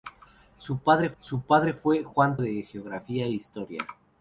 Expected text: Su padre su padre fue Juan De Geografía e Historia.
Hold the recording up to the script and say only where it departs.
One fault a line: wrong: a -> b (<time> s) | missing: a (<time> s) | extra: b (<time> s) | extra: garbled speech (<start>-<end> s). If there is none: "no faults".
no faults